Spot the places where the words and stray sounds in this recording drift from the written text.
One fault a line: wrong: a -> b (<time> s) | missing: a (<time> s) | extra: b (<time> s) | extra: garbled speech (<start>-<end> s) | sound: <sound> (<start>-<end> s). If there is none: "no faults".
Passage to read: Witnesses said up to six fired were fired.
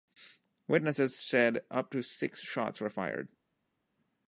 wrong: fired -> shots (2.4 s)